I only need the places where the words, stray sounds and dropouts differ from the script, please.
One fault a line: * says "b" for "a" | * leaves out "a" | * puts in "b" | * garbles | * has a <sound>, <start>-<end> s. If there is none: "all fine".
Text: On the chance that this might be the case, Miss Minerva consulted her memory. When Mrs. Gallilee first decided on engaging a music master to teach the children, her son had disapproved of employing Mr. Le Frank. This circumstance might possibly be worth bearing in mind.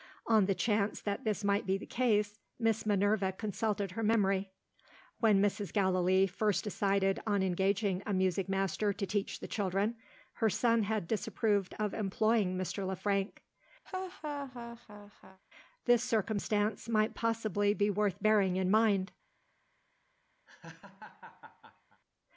* has a laugh, 13.8-15.4 s
* has a laugh, 20.5-22.0 s